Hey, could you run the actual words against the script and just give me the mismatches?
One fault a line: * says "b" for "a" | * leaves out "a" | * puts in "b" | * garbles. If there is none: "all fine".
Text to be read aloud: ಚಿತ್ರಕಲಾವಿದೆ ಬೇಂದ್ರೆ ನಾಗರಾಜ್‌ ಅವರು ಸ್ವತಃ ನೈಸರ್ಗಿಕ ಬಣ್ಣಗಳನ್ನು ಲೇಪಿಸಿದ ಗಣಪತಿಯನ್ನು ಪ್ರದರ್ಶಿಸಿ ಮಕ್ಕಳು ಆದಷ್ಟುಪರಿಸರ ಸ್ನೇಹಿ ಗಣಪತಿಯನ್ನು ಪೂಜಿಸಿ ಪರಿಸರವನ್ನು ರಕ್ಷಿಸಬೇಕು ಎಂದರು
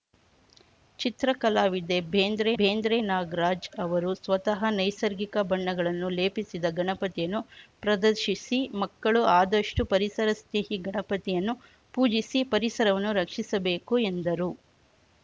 * puts in "ಬೇಂದ್ರೆ"